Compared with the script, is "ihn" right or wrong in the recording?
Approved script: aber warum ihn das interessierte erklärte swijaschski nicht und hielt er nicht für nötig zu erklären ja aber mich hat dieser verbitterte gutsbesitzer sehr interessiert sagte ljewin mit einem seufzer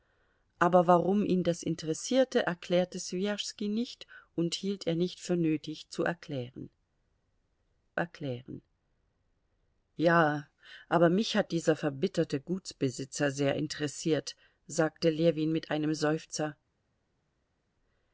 right